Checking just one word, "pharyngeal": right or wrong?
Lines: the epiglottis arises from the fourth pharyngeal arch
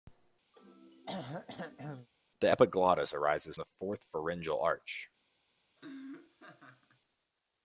right